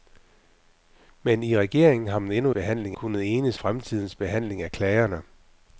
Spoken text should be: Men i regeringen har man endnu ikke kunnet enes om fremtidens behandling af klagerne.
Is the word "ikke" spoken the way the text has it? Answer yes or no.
no